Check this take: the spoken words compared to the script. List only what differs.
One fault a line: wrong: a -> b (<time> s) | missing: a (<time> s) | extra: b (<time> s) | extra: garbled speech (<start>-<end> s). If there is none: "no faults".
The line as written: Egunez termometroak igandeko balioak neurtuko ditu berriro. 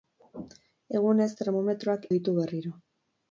missing: igandeko balioak neurtuko (2.1 s)